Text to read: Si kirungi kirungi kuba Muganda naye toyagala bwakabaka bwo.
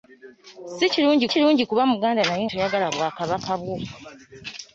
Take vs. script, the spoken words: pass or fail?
pass